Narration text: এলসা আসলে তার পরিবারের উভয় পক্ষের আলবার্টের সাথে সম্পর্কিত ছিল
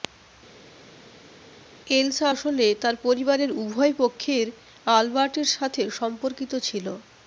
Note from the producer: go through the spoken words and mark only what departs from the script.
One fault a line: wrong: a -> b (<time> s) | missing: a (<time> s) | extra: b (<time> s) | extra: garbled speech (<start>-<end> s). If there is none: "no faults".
no faults